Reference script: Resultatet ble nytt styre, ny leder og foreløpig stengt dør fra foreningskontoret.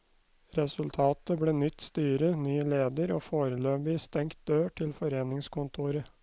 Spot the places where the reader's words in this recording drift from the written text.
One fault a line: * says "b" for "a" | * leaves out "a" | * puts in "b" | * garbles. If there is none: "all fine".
* says "til" for "fra"